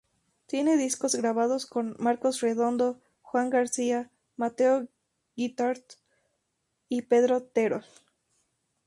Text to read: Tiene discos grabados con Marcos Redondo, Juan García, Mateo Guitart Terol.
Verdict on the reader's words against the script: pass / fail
fail